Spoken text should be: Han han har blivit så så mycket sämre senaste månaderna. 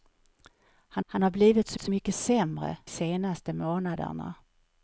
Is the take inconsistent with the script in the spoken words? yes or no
no